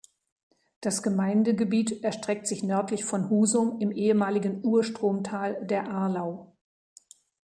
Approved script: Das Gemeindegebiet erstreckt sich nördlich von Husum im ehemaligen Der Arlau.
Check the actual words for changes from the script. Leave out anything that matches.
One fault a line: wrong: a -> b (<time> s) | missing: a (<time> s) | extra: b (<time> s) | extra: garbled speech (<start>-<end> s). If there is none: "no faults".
extra: Urstromtal (4.7 s)